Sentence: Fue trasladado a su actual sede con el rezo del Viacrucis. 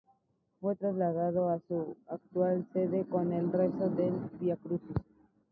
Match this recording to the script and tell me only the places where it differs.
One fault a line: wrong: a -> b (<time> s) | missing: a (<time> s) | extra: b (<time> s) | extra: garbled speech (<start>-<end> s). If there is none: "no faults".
no faults